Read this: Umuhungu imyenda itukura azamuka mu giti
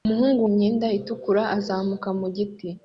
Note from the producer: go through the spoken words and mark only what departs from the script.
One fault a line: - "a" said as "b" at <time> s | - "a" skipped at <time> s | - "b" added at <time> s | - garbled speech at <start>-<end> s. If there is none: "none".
none